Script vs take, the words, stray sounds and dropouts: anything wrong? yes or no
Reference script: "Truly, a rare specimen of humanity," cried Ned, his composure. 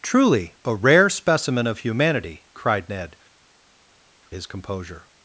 no